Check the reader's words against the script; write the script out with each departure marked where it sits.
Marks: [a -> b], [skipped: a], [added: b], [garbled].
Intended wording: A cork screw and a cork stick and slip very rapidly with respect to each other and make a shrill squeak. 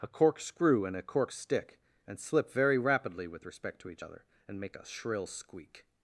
A cork screw and a cork stick and slip very rapidly with respect to each other and make a shrill squeak.